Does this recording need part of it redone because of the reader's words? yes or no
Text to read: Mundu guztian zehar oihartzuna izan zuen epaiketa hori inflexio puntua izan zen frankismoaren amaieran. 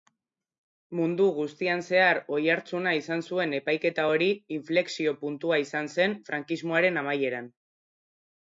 no